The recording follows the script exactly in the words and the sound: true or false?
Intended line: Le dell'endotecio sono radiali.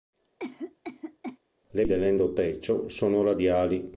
false